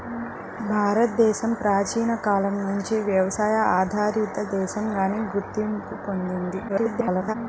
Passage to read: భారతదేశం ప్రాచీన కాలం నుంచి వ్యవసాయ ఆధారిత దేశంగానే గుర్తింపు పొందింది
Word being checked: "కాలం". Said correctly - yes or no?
yes